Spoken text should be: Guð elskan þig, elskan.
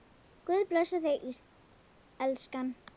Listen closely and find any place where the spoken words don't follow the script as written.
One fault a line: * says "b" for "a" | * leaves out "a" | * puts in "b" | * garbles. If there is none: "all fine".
* says "blessi" for "elskan"